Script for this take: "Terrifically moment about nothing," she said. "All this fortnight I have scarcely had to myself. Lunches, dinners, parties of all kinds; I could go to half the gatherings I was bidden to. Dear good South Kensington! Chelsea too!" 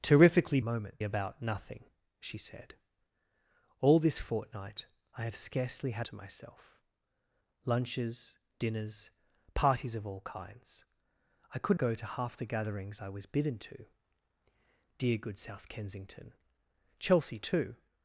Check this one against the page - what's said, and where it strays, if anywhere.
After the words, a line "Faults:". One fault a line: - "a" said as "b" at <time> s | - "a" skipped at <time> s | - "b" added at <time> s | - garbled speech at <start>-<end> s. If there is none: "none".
"Terrifically moment about nothing," she said. "All this fortnight I have scarcely had to myself. Lunches, dinners, parties of all kinds; I could go to half the gatherings I was bidden to. Dear good South Kensington! Chelsea too!"
Faults:
none